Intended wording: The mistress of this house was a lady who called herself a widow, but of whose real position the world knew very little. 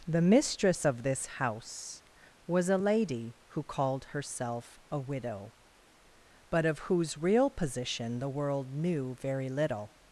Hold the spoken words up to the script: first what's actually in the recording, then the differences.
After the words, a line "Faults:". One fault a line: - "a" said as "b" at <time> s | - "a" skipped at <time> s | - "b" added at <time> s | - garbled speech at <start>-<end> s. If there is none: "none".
The mistress of this house was a lady who called herself a widow, but of whose real position the world knew very little.
Faults:
none